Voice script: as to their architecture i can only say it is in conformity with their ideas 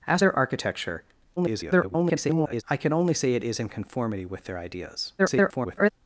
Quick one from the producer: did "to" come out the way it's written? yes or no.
no